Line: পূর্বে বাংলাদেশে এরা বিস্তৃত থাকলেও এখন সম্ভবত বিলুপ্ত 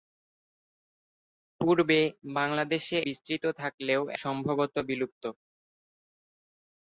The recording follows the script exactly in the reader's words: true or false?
false